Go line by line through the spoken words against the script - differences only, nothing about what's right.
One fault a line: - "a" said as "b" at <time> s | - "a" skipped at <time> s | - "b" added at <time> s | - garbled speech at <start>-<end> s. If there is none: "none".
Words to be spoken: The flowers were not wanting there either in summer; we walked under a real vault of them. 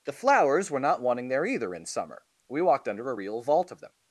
none